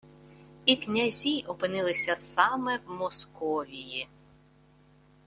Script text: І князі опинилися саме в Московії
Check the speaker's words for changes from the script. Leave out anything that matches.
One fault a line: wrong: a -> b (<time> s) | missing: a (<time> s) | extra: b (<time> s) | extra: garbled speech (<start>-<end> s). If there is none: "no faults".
no faults